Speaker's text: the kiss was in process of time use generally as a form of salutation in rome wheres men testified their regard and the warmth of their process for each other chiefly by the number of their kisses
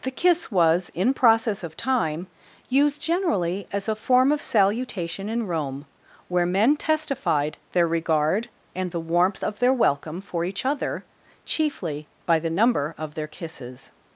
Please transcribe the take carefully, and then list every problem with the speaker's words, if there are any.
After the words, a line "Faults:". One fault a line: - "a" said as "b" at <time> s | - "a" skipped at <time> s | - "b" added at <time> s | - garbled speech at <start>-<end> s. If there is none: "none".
the kiss was in process of time used generally as a form of salutation in rome where men testified their regard and the warmth of their welcome for each other chiefly by the number of their kisses
Faults:
- "use" said as "used" at 2.7 s
- "wheres" said as "where" at 6.3 s
- "process" said as "welcome" at 9.7 s